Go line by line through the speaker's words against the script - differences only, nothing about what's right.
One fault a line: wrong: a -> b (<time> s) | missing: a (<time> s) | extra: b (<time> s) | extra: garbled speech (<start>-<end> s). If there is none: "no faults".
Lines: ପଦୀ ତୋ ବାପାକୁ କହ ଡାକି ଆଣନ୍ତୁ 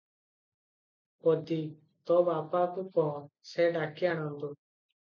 extra: ସେ (3.5 s)